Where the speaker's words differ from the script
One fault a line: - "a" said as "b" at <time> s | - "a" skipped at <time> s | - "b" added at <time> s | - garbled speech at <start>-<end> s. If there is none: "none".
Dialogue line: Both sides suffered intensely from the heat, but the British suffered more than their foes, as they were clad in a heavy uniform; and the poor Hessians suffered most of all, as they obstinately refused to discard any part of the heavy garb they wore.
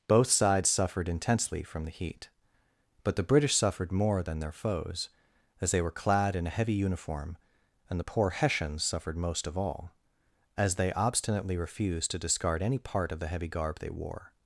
none